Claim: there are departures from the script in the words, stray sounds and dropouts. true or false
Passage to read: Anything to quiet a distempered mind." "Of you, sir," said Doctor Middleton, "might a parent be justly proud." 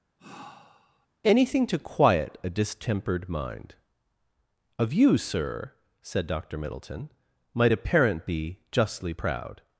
true